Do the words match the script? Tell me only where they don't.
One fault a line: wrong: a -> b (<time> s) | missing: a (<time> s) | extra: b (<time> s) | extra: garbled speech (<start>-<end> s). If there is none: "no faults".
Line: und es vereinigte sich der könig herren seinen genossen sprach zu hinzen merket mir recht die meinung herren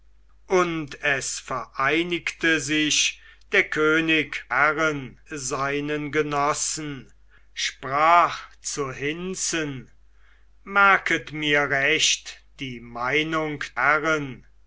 no faults